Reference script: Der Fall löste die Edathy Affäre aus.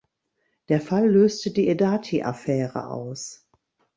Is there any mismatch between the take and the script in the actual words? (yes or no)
no